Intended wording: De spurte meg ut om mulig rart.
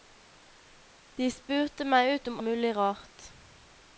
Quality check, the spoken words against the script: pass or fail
pass